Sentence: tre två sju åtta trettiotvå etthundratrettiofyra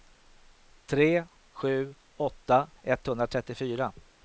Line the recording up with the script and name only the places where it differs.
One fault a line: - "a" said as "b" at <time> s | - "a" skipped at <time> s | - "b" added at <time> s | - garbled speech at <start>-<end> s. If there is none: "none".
- "två" skipped at 1.2 s
- "trettiotvå" skipped at 2.7 s